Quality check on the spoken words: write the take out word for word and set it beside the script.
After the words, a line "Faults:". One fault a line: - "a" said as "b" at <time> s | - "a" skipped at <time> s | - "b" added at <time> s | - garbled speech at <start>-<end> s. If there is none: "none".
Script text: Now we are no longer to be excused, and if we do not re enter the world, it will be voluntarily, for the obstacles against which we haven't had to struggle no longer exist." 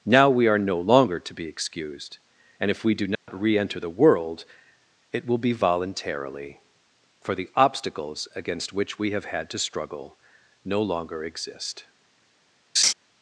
Now we are no longer to be excused, and if we do not re enter the world, it will be voluntarily, for the obstacles against which we have had to struggle no longer exist."
Faults:
- "haven't" said as "have" at 9.1 s